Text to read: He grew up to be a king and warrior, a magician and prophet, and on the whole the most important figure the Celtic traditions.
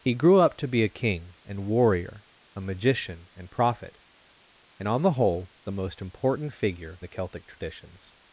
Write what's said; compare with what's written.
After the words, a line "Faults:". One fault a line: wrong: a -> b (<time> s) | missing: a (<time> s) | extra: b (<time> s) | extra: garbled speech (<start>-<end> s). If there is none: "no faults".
He grew up to be a king and warrior, a magician and prophet, and on the whole the most important figure the Celtic traditions.
Faults:
no faults